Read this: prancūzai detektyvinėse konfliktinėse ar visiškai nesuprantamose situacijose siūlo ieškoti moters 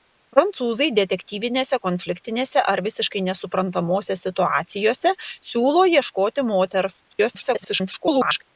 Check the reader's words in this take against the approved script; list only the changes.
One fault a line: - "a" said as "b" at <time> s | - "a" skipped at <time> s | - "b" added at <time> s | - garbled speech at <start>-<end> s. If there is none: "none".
- garbled speech at 7.1-8.4 s